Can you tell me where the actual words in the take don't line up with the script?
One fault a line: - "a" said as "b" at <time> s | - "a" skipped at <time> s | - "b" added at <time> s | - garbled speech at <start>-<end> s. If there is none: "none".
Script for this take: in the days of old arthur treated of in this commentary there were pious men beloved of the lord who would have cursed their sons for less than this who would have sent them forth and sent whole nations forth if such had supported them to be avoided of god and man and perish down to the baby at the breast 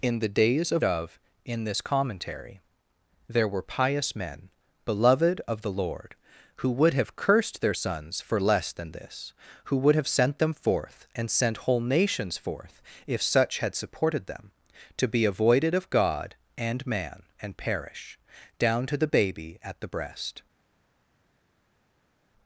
- "old arthur treated" skipped at 0.8 s